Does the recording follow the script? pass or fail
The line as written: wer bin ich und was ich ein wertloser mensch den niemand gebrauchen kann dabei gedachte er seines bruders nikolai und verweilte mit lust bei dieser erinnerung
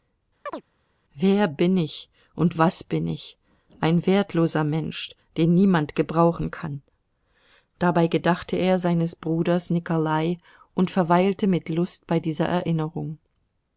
fail